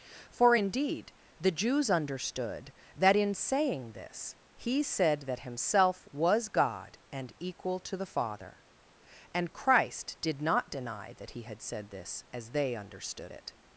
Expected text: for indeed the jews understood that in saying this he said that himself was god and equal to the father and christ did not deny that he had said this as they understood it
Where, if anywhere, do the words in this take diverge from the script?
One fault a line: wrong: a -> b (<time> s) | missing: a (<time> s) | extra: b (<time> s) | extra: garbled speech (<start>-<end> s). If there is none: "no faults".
no faults